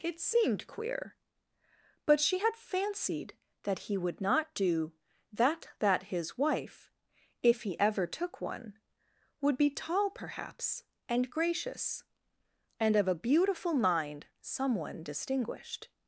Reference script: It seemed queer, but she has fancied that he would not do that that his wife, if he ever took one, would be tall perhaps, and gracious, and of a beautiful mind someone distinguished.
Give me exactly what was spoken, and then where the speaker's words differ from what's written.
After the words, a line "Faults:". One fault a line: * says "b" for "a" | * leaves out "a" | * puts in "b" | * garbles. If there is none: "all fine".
It seemed queer, but she had fancied that he would not do that that his wife, if he ever took one, would be tall perhaps, and gracious, and of a beautiful mind someone distinguished.
Faults:
* says "had" for "has"